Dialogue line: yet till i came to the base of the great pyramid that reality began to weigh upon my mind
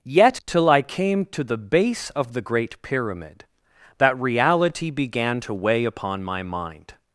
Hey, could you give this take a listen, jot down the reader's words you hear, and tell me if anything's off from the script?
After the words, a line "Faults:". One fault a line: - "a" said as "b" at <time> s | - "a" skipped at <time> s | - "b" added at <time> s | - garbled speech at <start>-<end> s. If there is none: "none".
yet till i came to the base of the great pyramid that reality began to weigh upon my mind
Faults:
none